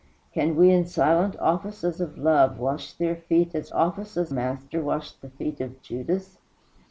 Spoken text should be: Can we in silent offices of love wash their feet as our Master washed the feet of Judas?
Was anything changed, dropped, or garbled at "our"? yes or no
yes